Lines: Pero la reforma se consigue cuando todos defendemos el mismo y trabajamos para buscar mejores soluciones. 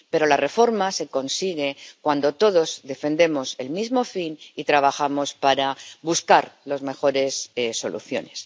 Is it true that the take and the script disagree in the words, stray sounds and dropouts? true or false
true